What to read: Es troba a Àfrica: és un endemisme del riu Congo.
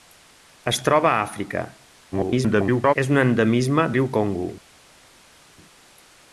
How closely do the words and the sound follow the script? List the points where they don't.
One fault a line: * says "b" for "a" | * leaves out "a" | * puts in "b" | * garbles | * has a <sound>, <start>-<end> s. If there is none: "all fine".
* garbles
* leaves out "del"